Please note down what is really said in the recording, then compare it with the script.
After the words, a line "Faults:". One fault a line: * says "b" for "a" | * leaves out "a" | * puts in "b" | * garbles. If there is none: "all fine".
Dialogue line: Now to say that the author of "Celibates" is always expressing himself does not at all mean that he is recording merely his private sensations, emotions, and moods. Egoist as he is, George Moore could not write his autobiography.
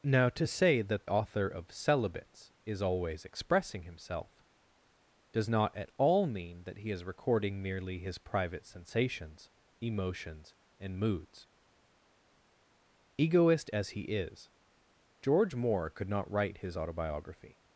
Now to say that author of "Celibates" is always expressing himself does not at all mean that he is recording merely his private sensations, emotions, and moods. Egoist as he is, George Moore could not write his autobiography.
Faults:
* leaves out "the"